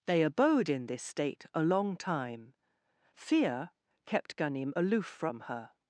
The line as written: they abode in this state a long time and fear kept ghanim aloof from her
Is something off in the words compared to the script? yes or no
yes